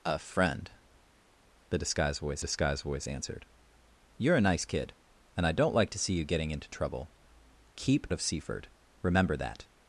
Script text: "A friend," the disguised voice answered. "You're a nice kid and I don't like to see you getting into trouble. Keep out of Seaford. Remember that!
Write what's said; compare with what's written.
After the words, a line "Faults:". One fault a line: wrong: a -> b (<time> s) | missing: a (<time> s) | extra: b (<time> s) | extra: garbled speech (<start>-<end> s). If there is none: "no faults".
"A friend," the disguised voice disguised voice answered. "You're a nice kid and I don't like to see you getting into trouble. Keep of Seaford. Remember that!
Faults:
extra: disguised voice (2.4 s)
missing: out (8.1 s)